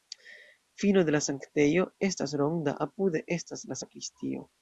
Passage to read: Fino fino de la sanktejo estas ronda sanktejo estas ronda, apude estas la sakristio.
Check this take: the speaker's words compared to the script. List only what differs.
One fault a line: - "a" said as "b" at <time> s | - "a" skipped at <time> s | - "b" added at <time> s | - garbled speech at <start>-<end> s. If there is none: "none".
- "fino" skipped at 1.0 s
- "sanktejo estas ronda" skipped at 2.8 s